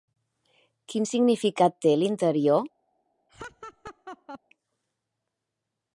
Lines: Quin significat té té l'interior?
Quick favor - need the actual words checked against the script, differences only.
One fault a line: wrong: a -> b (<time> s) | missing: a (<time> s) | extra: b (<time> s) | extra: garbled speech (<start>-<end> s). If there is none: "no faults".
missing: té (2.0 s)